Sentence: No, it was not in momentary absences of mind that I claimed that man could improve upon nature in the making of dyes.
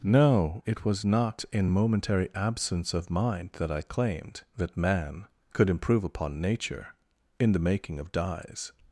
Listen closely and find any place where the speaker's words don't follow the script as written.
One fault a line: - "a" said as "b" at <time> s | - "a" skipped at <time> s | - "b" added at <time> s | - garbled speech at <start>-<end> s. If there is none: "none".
- "absences" said as "absence" at 2.3 s